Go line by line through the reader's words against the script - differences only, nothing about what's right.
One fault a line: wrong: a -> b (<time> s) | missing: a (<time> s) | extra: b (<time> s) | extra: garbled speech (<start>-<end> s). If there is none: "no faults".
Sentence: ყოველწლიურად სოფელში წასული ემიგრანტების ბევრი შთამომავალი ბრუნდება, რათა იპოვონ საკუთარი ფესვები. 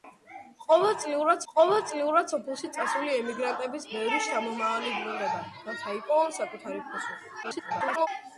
extra: ყოველწლიურად (1.5 s)
extra: garbled speech (7.4-8.1 s)